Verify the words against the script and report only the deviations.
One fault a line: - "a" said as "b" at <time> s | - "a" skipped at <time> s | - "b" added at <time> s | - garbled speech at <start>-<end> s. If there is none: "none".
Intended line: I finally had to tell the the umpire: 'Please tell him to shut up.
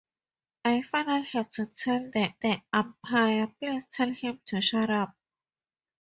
none